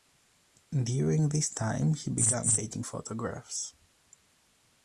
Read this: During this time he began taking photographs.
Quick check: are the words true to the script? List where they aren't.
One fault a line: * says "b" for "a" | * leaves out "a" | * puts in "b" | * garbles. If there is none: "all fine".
all fine